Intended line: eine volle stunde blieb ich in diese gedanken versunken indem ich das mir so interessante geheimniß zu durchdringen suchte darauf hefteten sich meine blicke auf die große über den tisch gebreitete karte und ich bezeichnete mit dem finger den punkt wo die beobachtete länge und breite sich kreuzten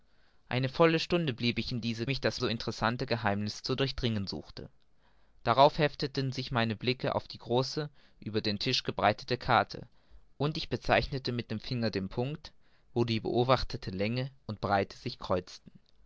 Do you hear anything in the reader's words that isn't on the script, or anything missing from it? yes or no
yes